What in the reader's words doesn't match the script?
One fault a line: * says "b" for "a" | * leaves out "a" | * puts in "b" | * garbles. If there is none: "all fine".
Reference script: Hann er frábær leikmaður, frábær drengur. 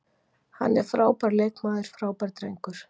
all fine